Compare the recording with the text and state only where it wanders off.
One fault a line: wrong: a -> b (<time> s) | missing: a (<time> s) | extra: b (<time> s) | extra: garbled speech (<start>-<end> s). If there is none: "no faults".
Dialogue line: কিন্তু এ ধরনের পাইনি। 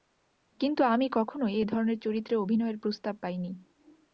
extra: আমি কখনোই (0.8 s)
extra: চরিত্রে অভিনয়ের প্রস্তাব (2.0 s)